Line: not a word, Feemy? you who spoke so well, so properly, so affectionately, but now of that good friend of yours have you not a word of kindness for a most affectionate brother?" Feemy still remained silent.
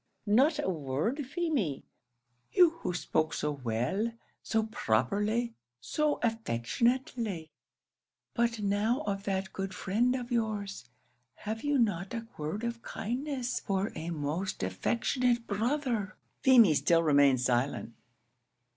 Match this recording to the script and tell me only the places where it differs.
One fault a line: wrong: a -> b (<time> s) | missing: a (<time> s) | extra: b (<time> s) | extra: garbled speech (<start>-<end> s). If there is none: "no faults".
no faults